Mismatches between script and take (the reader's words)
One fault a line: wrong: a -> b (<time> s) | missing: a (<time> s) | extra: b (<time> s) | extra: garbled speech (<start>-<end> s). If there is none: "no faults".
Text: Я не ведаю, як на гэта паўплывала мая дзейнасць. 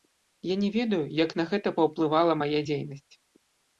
no faults